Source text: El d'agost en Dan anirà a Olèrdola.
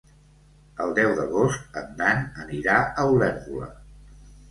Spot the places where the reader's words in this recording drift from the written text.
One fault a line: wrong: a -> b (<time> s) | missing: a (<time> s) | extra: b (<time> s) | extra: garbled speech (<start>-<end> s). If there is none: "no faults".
extra: deu (1.0 s)